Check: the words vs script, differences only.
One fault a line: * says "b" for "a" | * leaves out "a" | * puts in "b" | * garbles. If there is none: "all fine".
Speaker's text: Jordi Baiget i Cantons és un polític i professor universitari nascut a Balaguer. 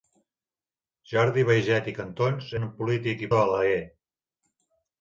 * leaves out "és"
* leaves out "professor universitari nascut"